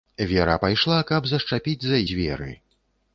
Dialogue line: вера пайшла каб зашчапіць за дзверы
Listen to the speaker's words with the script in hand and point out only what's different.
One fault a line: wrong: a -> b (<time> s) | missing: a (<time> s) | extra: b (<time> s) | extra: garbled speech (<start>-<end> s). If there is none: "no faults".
no faults